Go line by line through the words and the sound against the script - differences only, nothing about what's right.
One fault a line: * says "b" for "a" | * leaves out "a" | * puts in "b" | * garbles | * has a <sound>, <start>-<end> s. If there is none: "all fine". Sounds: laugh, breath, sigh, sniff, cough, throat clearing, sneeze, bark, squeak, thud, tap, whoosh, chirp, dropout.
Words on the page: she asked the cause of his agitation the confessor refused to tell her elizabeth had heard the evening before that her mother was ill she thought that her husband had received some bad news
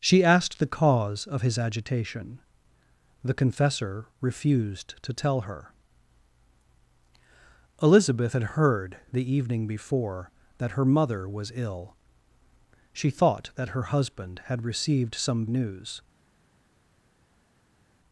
* leaves out "bad"